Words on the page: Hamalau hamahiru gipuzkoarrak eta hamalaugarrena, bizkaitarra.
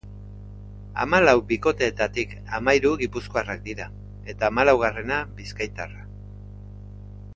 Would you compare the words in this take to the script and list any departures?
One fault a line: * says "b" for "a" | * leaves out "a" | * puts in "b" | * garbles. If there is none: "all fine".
* puts in "bikoteetatik"
* puts in "dira"